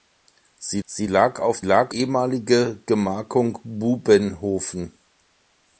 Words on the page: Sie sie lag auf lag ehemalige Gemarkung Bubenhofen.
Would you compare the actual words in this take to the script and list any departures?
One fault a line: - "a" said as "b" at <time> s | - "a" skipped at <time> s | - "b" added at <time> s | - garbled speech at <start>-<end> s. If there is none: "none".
none